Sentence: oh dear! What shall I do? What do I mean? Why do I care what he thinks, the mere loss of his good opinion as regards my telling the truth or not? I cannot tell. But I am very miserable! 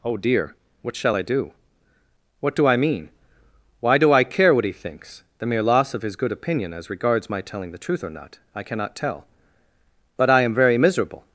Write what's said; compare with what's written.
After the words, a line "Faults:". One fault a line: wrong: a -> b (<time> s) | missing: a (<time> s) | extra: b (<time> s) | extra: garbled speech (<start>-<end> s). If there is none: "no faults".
oh dear! What shall I do? What do I mean? Why do I care what he thinks, the mere loss of his good opinion as regards my telling the truth or not? I cannot tell. But I am very miserable!
Faults:
no faults